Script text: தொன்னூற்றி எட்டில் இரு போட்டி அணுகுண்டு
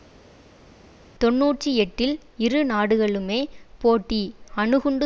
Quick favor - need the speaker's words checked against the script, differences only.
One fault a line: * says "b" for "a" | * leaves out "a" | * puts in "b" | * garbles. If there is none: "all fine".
* puts in "நாடுகளுமே"